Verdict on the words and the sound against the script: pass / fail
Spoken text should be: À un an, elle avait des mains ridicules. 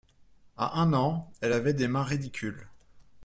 pass